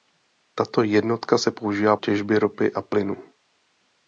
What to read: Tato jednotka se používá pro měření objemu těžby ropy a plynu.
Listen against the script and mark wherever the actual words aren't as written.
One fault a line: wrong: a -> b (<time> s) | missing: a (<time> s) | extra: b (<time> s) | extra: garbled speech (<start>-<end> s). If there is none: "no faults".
missing: pro měření objemu (2.0 s)